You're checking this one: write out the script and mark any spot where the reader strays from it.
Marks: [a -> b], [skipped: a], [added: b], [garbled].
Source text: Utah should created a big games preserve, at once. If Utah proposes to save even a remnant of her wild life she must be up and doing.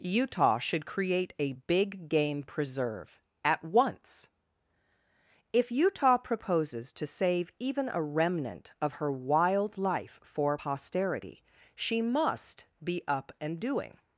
Utah should [created -> create] a big [games -> game] preserve, at once. If Utah proposes to save even a remnant of her wild life [added: for posterity] she must be up and doing.